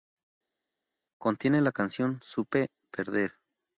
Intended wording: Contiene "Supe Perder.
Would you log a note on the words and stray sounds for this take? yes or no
yes